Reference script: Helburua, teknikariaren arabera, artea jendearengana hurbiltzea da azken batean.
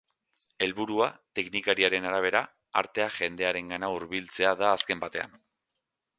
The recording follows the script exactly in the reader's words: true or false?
true